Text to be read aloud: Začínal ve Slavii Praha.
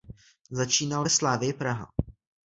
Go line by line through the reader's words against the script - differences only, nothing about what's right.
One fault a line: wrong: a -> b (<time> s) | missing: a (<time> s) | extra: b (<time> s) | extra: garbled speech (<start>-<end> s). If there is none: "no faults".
no faults